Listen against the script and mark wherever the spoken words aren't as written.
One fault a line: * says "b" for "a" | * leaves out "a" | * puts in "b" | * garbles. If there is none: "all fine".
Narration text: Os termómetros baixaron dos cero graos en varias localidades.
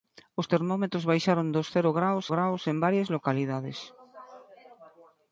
* puts in "graos"